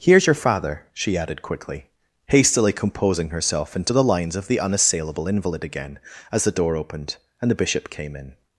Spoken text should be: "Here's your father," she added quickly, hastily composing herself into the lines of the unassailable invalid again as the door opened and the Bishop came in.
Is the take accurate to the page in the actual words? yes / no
yes